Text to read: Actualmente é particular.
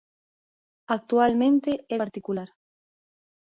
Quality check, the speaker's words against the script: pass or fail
pass